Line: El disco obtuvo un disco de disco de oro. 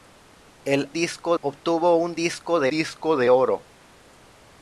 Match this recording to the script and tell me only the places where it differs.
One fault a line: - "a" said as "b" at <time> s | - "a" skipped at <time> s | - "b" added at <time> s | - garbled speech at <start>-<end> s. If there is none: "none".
none